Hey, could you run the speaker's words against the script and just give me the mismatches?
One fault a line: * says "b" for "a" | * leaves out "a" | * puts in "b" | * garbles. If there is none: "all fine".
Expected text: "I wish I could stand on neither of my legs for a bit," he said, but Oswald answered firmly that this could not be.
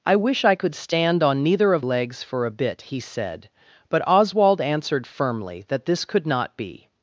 * leaves out "my"